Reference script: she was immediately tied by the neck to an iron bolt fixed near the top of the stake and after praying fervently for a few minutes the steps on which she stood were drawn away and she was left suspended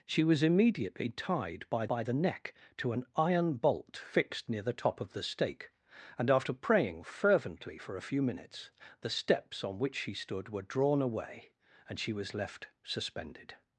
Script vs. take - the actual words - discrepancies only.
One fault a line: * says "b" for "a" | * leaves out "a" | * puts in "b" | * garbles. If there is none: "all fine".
* puts in "by"